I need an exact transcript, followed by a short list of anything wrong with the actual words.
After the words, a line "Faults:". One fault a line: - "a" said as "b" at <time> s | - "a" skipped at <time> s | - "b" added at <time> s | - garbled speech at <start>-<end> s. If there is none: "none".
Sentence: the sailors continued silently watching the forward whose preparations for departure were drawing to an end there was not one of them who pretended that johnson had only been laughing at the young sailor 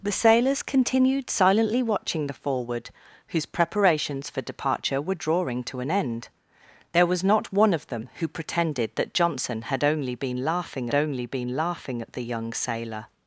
the sailors continued silently watching the forward whose preparations for departure were drawing to an end there was not one of them who pretended that johnson had only been laughing only been laughing at the young sailor
Faults:
- "only been laughing" added at 10.9 s